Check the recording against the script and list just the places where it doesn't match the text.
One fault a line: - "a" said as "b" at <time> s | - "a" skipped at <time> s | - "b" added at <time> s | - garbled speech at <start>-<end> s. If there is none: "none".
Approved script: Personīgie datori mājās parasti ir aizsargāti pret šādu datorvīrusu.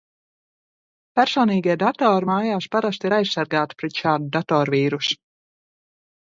none